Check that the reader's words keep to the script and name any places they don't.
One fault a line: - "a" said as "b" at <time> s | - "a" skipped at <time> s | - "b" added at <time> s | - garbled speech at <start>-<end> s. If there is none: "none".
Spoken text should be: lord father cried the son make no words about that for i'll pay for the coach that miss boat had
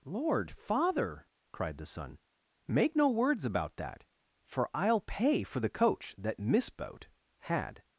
none